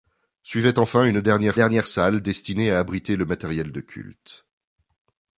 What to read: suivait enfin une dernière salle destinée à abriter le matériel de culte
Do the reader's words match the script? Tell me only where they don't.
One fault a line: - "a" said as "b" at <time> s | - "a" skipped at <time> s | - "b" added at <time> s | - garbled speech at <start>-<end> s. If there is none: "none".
- "dernière" added at 1.5 s